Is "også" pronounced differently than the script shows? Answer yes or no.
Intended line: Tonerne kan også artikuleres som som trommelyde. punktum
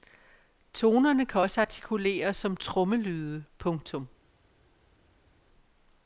no